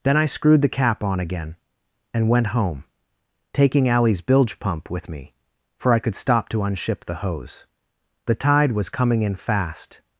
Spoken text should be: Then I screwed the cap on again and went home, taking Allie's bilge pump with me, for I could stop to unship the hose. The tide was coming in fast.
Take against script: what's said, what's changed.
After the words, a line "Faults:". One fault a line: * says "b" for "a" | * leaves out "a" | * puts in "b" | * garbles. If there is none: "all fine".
Then I screwed the cap on again and went home, taking Allie's bilge pump with me, for I could stop to unship the hose. The tide was coming in fast.
Faults:
all fine